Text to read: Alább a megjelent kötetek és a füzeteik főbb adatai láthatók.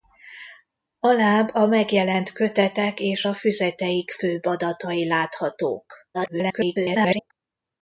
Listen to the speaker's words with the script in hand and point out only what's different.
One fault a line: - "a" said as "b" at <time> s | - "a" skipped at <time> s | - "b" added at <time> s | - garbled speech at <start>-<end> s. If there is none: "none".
- garbled speech at 6.1-7.3 s